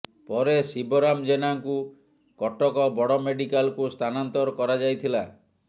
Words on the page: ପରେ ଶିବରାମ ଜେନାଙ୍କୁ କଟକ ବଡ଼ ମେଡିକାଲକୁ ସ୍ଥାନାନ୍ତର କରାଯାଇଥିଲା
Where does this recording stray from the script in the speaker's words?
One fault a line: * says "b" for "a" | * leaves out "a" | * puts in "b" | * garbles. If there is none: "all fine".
all fine